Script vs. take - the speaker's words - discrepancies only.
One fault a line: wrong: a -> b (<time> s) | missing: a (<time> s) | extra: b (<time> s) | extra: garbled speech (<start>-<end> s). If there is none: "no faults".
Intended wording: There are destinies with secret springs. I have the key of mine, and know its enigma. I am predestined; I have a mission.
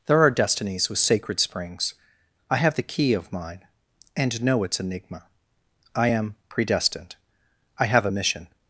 wrong: secret -> sacred (1.0 s)